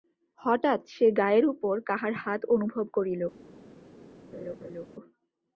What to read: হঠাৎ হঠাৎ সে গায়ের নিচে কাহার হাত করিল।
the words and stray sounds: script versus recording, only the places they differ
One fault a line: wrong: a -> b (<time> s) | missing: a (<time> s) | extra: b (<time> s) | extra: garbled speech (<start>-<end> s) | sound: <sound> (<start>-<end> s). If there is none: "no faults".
missing: হঠাৎ (0.8 s)
wrong: নিচে -> উপর (1.4 s)
extra: অনুভব (2.5 s)
sound: laugh (4.3-4.9 s)